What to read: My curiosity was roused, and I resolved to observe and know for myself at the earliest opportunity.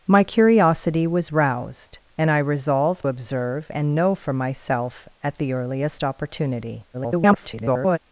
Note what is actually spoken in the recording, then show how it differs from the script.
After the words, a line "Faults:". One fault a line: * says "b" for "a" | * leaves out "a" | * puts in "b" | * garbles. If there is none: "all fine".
My curiosity was roused, and I resolved observe and know for myself at the earliest opportunity. [garbled]
Faults:
* leaves out "to"
* garbles